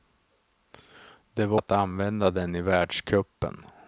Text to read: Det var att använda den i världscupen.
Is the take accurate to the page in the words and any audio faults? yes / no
yes